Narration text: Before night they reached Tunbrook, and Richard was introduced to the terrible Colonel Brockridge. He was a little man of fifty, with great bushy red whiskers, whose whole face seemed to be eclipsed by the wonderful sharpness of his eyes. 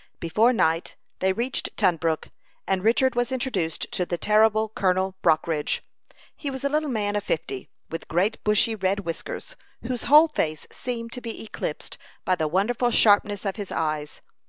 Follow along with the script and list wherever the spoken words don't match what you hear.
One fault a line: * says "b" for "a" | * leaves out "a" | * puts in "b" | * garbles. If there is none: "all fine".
all fine